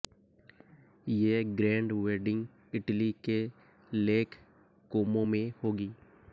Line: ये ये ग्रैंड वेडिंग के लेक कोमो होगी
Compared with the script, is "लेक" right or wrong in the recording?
right